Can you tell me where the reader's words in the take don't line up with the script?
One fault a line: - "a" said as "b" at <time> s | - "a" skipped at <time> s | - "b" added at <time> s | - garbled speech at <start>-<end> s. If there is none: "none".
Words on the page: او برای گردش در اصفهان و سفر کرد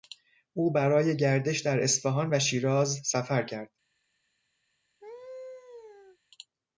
- "شیراز" added at 2.4 s